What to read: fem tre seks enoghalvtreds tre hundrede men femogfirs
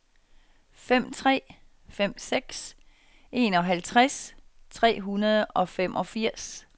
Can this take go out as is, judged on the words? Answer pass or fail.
fail